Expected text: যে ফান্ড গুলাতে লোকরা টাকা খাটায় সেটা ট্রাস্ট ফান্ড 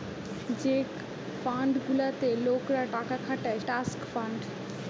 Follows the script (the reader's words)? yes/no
no